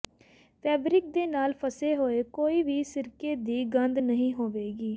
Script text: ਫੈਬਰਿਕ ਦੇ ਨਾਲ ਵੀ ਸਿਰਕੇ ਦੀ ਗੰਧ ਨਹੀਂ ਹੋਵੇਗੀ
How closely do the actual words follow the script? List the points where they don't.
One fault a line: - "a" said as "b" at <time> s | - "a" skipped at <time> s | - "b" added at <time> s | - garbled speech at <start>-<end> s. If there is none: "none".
- "ਫਸੇ ਹੋਏ ਕੋਈ" added at 1.6 s